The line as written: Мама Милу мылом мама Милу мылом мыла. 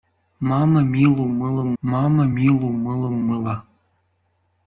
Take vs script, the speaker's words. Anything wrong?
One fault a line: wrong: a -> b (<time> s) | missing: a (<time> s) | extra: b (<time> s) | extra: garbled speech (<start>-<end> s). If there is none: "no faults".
no faults